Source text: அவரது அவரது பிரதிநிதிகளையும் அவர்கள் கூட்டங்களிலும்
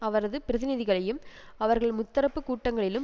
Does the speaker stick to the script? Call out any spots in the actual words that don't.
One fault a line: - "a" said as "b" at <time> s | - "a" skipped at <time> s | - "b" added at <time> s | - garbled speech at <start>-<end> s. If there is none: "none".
- "அவரது" skipped at 0.4 s
- "முத்தரப்பு" added at 2.0 s